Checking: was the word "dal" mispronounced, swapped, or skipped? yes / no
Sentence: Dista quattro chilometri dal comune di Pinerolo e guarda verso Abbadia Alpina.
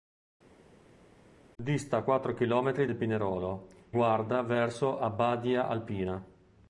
yes